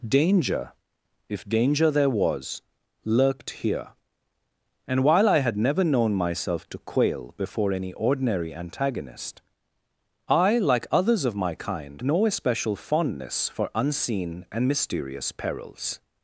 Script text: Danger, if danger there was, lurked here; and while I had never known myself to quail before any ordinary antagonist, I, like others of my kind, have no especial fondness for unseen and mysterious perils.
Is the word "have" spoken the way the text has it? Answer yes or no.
no